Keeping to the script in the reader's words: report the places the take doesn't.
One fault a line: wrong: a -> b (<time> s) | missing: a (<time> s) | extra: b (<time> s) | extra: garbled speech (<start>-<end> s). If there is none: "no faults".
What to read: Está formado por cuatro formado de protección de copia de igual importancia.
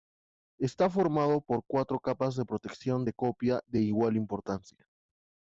wrong: formado -> capas (2.0 s)